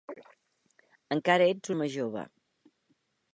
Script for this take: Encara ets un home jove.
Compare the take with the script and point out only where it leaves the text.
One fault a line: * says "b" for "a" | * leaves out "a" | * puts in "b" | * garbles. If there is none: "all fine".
* leaves out "un"